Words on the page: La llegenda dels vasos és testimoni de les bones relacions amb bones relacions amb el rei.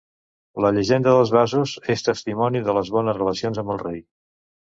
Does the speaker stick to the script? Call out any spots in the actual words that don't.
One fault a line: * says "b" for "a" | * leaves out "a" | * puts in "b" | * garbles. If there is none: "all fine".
* leaves out "bones relacions amb"